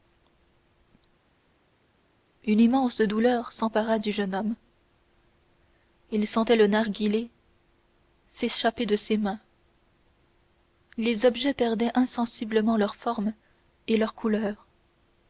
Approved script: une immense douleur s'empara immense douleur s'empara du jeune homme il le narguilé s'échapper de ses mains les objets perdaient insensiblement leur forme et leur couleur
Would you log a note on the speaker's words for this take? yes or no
yes